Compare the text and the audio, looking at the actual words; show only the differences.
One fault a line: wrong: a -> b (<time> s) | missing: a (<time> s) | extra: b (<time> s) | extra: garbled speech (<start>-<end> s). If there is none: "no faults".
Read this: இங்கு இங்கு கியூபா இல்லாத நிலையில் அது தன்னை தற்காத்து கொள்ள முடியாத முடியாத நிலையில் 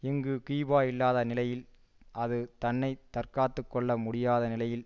missing: இங்கு (0.3 s)
missing: முடியாத (4.4 s)